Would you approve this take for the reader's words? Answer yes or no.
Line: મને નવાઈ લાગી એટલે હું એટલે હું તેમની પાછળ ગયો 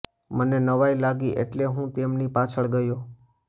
no